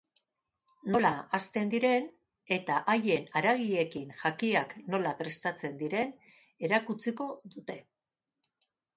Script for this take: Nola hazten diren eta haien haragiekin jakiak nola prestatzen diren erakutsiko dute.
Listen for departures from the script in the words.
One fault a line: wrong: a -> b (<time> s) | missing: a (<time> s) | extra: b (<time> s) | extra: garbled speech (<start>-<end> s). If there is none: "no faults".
no faults